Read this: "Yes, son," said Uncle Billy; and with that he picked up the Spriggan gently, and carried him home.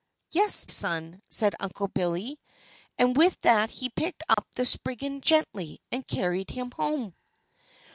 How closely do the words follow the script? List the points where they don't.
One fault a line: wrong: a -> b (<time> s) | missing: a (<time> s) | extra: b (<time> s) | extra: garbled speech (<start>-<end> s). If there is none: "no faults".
no faults